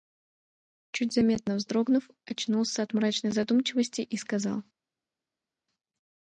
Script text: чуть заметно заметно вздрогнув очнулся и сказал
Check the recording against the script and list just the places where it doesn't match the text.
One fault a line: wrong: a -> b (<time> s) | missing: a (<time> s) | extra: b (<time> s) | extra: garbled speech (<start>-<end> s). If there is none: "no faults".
missing: заметно (1.6 s)
extra: от мрачной задумчивости (2.8 s)